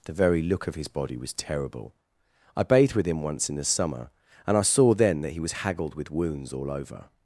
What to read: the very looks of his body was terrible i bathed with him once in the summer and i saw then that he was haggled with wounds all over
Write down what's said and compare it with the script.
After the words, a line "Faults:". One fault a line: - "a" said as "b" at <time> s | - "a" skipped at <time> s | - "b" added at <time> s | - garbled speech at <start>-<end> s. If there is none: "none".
the very look of his body was terrible i bathed with him once in the summer and i saw then that he was haggled with wounds all over
Faults:
- "looks" said as "look" at 0.4 s